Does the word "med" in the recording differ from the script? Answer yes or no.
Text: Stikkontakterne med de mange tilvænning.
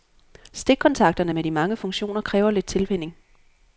no